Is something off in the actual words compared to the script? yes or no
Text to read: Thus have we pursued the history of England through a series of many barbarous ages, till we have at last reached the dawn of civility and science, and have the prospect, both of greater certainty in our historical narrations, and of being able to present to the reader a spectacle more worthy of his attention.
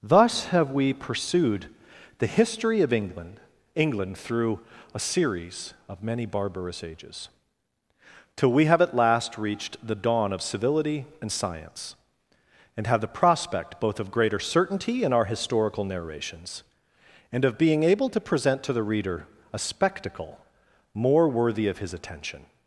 yes